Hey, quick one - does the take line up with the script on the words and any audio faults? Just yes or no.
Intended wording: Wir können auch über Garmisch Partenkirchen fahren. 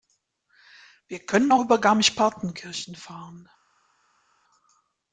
yes